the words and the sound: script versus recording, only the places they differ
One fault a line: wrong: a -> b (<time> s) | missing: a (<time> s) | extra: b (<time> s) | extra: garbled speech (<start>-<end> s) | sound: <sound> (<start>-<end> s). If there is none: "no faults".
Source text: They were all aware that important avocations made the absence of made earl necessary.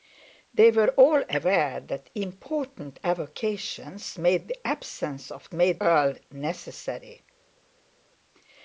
no faults